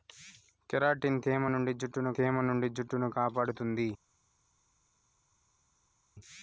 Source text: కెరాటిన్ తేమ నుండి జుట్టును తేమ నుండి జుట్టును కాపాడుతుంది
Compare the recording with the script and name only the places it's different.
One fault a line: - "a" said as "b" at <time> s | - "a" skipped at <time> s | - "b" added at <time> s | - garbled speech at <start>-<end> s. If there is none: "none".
none